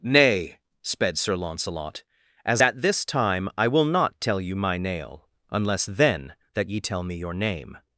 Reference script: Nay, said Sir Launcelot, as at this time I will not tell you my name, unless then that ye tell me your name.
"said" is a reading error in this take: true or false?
true